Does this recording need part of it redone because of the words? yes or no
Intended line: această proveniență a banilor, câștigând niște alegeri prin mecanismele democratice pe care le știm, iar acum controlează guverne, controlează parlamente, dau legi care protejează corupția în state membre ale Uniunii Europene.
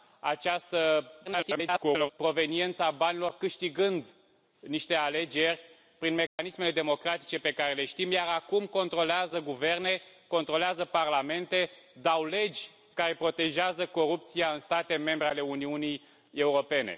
yes